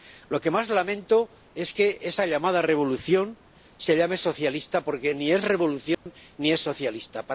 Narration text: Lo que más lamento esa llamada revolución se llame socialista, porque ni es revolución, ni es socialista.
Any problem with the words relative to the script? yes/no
yes